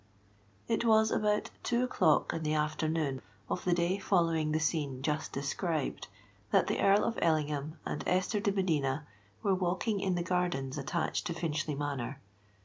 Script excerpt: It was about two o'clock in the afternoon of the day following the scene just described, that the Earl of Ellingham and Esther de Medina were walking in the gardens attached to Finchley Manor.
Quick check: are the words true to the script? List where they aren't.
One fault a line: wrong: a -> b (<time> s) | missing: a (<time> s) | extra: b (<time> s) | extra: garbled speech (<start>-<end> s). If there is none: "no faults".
no faults